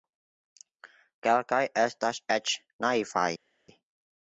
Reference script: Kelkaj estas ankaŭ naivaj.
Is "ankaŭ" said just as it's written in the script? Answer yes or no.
no